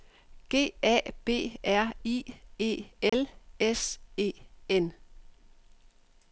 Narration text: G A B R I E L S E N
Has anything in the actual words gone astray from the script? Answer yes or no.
no